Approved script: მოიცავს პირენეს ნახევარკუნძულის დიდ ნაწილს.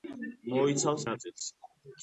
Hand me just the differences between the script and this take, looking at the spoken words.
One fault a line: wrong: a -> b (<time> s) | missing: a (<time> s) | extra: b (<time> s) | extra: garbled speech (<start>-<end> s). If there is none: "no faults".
missing: პირენეს ნახევარკუნძულის დიდ (1.1 s)